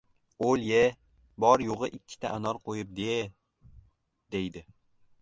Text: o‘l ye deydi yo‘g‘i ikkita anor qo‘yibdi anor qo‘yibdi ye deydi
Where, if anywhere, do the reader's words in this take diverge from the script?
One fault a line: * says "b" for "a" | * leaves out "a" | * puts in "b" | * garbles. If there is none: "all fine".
* says "bor" for "deydi"
* leaves out "anor qo‘yibdi"